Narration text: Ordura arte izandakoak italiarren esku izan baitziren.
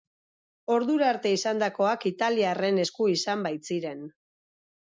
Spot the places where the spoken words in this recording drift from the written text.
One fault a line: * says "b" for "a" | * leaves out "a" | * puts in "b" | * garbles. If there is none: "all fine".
all fine